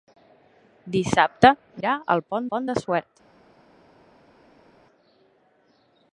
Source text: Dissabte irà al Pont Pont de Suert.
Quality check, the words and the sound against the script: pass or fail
pass